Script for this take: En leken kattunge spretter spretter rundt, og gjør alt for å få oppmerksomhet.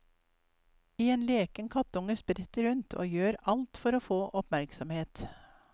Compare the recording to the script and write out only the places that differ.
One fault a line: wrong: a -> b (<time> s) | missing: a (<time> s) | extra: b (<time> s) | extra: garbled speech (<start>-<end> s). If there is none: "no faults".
missing: spretter (2.7 s)